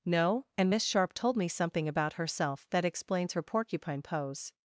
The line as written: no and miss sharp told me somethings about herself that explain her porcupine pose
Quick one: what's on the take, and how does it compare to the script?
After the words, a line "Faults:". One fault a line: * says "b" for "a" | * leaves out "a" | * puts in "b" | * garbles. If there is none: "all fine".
no and miss sharp told me something about herself that explains her porcupine pose
Faults:
* says "something" for "somethings"
* says "explains" for "explain"